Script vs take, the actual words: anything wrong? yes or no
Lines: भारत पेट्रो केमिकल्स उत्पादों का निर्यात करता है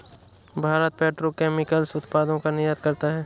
no